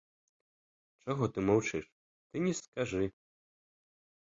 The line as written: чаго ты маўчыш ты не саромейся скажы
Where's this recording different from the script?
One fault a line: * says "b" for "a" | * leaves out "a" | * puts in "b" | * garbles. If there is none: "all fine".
* leaves out "саромейся"